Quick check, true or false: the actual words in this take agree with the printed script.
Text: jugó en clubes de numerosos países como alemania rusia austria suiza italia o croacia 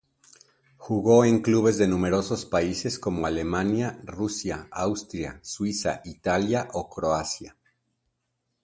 true